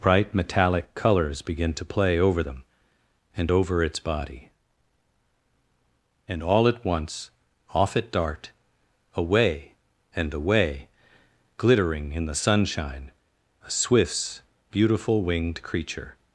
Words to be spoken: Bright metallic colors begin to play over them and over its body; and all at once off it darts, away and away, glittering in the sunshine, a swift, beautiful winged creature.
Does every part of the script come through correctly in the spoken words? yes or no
no